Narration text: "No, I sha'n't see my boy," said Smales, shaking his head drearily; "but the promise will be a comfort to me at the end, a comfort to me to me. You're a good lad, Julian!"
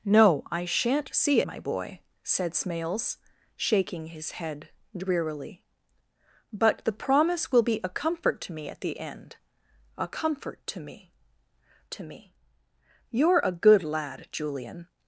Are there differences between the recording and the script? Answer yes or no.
no